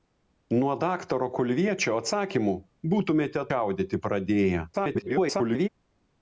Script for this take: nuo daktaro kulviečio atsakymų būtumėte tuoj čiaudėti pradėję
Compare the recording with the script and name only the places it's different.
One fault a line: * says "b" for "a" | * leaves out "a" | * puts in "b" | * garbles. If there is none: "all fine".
* leaves out "tuoj"
* garbles